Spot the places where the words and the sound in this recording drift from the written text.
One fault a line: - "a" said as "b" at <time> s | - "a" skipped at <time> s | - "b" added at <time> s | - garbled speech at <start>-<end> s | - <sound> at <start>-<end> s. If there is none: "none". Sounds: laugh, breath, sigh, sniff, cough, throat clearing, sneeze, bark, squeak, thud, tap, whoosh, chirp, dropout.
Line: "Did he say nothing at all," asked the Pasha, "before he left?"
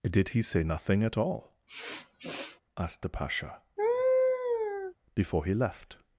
- sniff at 1.7-2.6 s
- laugh at 3.8-4.9 s